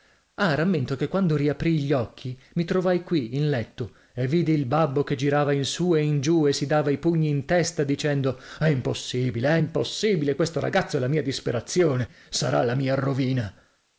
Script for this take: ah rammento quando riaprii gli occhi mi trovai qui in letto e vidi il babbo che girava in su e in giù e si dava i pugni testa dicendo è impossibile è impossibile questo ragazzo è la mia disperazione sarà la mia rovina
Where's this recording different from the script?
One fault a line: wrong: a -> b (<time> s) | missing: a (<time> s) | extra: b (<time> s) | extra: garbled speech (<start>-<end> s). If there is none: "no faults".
extra: che (0.9 s)
extra: in (7.3 s)